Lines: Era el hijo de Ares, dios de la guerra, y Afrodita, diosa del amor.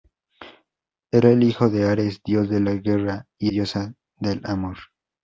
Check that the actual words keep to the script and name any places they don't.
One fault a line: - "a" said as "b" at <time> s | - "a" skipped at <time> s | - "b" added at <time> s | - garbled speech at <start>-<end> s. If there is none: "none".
- "Afrodita" skipped at 3.5 s